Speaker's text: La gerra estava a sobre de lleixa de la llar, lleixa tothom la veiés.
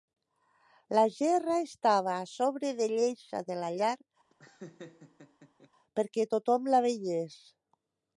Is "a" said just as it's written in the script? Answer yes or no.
yes